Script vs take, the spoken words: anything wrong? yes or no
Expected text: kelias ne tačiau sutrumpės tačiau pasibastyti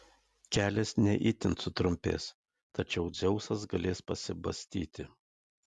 yes